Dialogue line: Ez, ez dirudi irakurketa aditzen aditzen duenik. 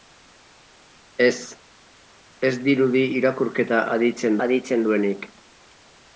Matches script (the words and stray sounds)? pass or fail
pass